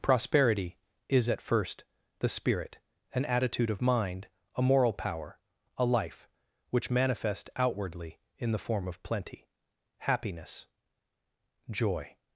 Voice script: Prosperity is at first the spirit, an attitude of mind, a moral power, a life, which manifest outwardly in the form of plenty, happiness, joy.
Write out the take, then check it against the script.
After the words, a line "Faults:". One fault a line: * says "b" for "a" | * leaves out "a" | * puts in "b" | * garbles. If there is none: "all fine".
Prosperity is at first the spirit, an attitude of mind, a moral power, a life, which manifest outwardly in the form of plenty, happiness, joy.
Faults:
all fine